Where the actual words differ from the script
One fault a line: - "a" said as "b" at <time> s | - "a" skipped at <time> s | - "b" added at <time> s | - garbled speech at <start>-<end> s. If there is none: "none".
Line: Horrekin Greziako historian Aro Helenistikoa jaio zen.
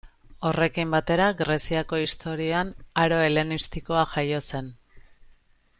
- "batera" added at 0.9 s